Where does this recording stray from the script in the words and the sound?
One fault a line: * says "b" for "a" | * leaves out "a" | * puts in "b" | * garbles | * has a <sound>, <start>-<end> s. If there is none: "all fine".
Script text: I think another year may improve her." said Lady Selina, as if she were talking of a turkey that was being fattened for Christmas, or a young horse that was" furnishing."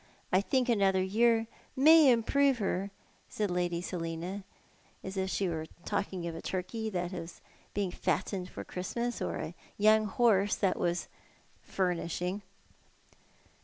all fine